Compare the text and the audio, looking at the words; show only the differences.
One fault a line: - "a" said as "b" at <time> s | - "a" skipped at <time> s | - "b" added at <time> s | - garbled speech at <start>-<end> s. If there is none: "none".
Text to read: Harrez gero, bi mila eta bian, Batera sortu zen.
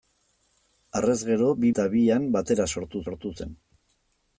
- "mila" skipped at 1.7 s
- "sortu" added at 3.1 s